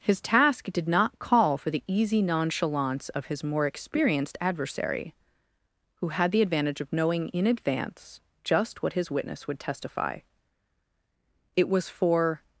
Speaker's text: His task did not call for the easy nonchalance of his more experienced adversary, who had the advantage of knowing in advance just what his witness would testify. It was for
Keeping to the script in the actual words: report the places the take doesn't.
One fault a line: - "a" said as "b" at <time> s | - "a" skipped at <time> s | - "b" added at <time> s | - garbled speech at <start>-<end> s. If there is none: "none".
none